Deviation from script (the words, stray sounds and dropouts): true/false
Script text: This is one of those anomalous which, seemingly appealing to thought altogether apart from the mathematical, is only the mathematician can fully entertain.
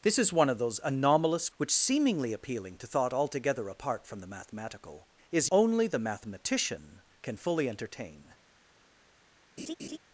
true